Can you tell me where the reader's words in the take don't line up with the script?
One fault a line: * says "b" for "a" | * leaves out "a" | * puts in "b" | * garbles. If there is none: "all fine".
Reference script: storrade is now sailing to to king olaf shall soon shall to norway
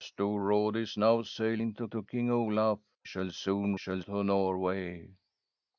all fine